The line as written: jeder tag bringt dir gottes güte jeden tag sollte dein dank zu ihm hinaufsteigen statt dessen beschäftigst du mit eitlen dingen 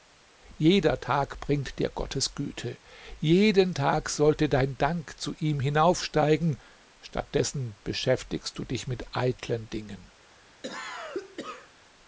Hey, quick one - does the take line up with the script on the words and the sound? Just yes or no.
no